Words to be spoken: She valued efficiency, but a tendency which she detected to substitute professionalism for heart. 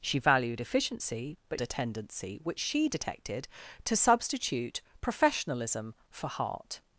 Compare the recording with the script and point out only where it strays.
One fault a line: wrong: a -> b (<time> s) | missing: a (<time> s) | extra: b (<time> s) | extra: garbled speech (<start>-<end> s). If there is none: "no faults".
no faults